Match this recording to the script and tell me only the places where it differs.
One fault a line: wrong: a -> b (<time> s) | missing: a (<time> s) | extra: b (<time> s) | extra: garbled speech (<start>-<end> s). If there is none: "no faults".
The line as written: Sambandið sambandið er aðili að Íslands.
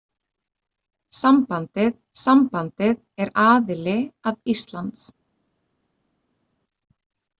no faults